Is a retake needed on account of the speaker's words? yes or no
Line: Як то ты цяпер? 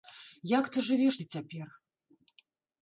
yes